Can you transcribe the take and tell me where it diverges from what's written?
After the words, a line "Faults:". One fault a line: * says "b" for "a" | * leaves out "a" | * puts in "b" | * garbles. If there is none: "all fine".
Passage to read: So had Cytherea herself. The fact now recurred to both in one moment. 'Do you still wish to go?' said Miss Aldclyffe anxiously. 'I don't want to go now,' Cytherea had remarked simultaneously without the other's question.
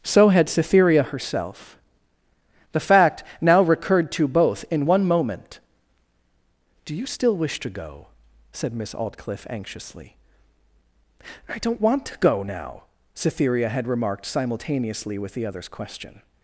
So had Cytherea herself. The fact now recurred to both in one moment. 'Do you still wish to go?' said Miss Aldclyffe anxiously. 'I don't want to go now,' Cytherea had remarked simultaneously with the other's question.
Faults:
* says "with" for "without"